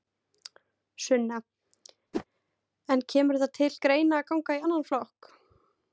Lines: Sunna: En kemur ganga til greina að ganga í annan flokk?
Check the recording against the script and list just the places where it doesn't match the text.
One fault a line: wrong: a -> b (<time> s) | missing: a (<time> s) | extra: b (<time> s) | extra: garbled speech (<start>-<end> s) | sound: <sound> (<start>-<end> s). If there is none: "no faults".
sound: whoosh (2.1-2.3 s)
wrong: ganga -> það (3.4 s)